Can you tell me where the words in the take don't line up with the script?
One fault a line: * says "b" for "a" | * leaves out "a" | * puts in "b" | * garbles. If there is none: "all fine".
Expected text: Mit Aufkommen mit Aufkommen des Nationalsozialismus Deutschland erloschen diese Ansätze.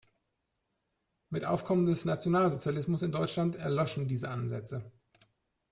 * leaves out "mit Aufkommen"
* puts in "in"